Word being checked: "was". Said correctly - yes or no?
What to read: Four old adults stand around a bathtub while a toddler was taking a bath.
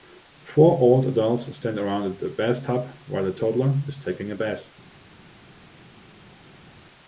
no